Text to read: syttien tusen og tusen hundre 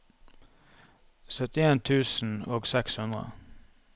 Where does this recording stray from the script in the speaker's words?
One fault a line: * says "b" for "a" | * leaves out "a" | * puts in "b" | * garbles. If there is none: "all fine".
* says "seks" for "tusen"